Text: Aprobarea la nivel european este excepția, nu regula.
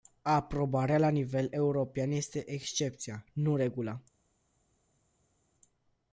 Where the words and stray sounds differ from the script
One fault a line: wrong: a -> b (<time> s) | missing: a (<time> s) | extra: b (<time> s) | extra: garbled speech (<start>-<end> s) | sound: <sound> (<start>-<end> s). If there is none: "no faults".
no faults